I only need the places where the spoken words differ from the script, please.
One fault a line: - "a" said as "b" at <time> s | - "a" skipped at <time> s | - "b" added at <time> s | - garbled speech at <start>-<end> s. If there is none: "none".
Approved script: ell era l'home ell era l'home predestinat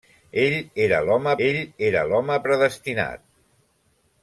none